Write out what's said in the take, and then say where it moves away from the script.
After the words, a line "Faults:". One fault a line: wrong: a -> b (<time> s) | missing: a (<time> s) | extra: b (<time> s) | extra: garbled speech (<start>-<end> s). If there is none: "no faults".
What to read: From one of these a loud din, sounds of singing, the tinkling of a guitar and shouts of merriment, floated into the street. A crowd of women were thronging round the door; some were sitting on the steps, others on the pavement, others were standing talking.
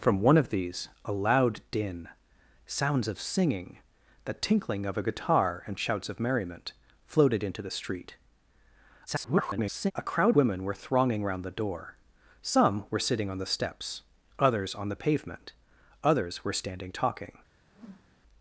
From one of these a loud din, sounds of singing, the tinkling of a guitar and shouts of merriment, floated into the street. [garbled] A crowd women were thronging round the door; some were sitting on the steps, others on the pavement, others were standing talking.
Faults:
extra: garbled speech (9.1-9.9 s)
missing: of (10.4 s)